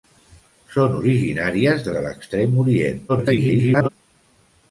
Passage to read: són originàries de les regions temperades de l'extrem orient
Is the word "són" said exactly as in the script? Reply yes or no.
yes